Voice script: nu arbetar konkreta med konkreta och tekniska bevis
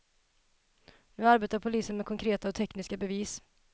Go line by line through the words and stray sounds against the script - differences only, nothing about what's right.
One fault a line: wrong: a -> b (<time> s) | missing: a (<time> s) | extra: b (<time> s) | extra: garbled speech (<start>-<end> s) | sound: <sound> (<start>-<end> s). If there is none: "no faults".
wrong: konkreta -> polisen (1.6 s)